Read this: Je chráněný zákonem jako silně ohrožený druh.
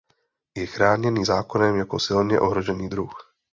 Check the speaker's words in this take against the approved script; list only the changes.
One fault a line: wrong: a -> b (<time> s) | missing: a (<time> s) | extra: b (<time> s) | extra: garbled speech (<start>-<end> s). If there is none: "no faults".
no faults